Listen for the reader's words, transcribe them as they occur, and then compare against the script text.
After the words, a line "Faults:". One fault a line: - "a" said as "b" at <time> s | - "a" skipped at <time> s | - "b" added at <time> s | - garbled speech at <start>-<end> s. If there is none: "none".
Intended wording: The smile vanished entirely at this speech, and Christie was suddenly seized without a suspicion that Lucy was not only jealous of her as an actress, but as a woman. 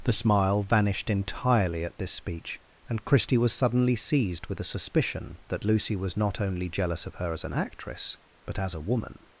The smile vanished entirely at this speech, and Christie was suddenly seized with a suspicion that Lucy was not only jealous of her as an actress, but as a woman.
Faults:
- "without" said as "with" at 4.5 s